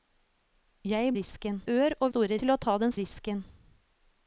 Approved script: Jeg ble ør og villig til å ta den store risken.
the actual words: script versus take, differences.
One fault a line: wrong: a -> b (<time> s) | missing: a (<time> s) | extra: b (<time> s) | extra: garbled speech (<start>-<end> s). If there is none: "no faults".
wrong: ble -> risken (1.2 s)
wrong: villig -> store (2.1 s)
missing: store (2.9 s)